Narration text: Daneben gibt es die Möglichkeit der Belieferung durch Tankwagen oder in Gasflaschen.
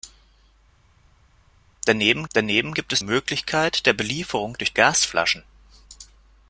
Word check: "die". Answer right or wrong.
wrong